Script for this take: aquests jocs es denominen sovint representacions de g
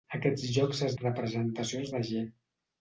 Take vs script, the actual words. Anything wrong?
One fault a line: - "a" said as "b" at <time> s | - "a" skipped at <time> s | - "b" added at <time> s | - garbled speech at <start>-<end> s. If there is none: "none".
- "denominen sovint" skipped at 0.9 s